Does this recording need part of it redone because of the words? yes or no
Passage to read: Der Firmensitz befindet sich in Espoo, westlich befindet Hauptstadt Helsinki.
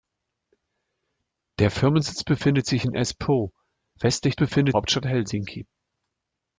no